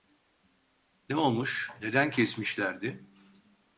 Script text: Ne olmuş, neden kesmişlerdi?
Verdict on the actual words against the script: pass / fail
pass